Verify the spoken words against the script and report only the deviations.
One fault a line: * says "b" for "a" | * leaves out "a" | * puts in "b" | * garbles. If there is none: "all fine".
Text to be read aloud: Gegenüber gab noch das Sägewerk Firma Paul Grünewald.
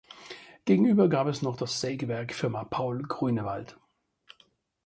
* puts in "es"